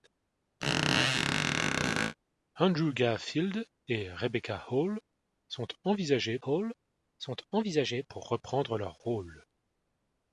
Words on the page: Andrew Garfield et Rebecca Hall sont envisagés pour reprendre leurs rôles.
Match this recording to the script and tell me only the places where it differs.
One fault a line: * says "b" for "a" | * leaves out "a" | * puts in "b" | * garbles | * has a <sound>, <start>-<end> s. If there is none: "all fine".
* has a squeak, 0.6-2.2 s
* puts in "Hall sont envisagés"